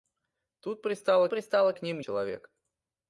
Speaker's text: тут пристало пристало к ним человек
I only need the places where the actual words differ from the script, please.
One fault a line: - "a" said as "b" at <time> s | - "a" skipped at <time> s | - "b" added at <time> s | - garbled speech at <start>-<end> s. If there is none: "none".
none